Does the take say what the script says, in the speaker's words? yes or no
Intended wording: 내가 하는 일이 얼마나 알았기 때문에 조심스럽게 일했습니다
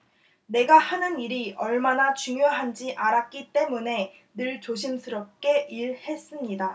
no